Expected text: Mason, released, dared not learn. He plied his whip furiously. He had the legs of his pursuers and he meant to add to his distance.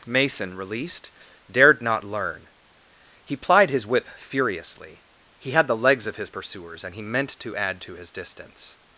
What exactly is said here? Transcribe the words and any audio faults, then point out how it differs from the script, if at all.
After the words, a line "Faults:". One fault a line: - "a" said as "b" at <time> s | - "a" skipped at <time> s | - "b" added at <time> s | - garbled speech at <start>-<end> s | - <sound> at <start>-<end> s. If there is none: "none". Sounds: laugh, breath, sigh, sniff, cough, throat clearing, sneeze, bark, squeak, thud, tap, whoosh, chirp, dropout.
Mason, released, dared not learn. He plied his whip furiously. He had the legs of his pursuers and he meant to add to his distance.
Faults:
none